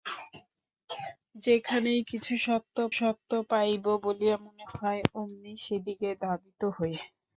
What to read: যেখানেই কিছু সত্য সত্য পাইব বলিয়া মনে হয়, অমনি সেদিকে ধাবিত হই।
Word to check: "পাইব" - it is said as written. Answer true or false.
true